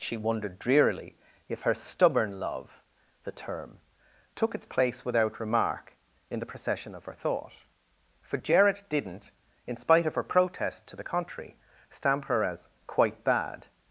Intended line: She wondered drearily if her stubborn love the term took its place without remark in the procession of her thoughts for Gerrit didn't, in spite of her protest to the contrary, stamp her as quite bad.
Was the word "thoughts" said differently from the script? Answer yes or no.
yes